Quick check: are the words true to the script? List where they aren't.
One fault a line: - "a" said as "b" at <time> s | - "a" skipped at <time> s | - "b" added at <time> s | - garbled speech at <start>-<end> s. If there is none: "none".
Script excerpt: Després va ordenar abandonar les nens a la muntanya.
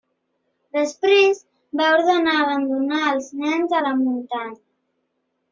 - "les" said as "els" at 3.1 s